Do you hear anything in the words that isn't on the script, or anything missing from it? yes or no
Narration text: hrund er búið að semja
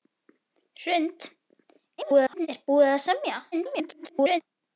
yes